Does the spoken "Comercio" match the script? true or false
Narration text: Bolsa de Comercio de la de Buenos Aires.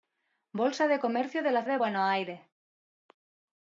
true